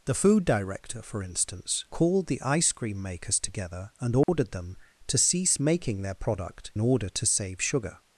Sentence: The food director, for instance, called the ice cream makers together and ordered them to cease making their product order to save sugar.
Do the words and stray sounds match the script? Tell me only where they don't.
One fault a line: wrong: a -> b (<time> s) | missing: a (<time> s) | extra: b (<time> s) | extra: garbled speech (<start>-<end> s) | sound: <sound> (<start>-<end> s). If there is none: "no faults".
sound: dropout (4.2-4.3 s)